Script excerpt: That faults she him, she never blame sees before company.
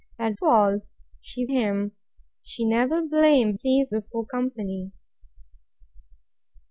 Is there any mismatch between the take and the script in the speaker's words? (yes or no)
no